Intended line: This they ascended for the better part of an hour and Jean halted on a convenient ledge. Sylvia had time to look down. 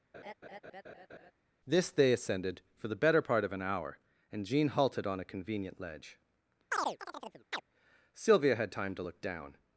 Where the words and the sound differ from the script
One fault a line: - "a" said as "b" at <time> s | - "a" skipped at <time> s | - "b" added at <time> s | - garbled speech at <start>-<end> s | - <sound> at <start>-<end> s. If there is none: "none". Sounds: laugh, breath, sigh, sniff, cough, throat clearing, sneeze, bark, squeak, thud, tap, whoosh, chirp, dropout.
- laugh at 0.1-1.3 s
- chirp at 6.7-7.6 s